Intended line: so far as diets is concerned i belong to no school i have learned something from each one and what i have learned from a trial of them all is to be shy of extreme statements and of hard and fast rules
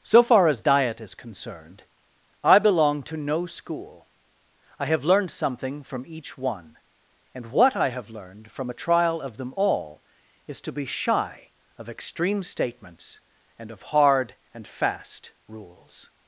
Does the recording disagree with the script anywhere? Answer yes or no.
yes